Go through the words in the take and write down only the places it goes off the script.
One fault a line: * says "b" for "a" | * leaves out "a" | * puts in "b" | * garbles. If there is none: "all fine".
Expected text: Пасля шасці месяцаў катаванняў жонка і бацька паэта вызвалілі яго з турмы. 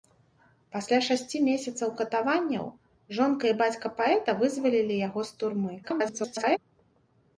* garbles